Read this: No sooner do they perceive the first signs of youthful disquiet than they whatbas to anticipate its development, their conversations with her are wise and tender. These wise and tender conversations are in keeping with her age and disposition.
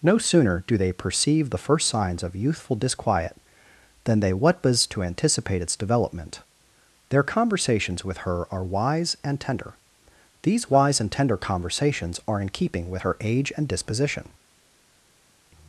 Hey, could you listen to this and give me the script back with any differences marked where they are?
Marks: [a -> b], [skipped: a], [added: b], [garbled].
No sooner do they perceive the first signs of youthful disquiet than they whatbas to anticipate its development, their conversations with her are wise and tender. These wise and tender conversations are in keeping with her age and disposition.